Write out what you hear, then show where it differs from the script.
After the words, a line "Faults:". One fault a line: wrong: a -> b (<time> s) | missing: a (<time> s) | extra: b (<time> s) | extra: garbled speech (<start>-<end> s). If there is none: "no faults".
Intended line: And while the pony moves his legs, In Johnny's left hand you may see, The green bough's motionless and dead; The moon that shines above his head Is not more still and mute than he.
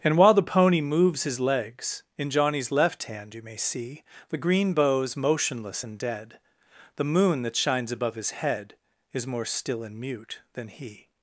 And while the pony moves his legs, In Johnny's left hand you may see, The green bough's motionless and dead; The moon that shines above his head Is more still and mute than he.
Faults:
missing: not (9.3 s)